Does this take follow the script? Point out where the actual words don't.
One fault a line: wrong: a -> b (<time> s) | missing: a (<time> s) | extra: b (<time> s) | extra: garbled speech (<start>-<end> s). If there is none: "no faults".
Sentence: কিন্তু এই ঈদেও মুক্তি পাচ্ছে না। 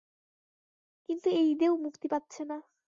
no faults